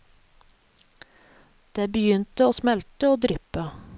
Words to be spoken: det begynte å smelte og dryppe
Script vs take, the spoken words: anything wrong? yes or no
no